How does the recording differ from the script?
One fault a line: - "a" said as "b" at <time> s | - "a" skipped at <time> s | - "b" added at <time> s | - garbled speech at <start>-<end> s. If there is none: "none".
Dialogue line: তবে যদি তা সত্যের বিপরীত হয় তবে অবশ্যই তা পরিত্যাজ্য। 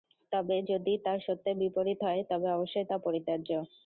none